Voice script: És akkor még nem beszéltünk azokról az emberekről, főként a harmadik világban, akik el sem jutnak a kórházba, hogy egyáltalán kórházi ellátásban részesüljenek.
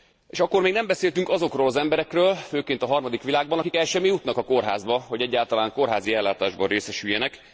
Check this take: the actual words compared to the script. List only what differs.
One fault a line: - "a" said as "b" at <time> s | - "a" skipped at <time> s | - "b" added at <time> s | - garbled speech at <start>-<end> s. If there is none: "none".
none